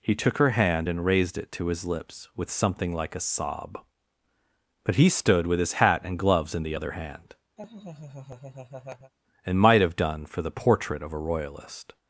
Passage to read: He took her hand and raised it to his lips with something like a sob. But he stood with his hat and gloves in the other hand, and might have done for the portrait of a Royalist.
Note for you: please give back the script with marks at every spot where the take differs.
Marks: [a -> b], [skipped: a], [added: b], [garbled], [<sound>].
He took her hand and raised it to his lips with something like a sob. But he stood with his hat and gloves in the other hand, [laugh] and might have done for the portrait of a Royalist.